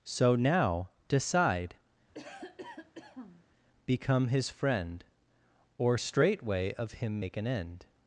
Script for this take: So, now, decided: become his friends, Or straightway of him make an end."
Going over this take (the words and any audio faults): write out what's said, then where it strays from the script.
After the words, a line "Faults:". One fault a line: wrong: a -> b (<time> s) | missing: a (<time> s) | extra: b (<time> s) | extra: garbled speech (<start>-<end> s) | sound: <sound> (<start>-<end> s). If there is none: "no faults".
So, now, decide: become his friend, Or straightway of him make an end."
Faults:
wrong: decided -> decide (1.1 s)
sound: cough (2.1-3.5 s)
wrong: friends -> friend (4.5 s)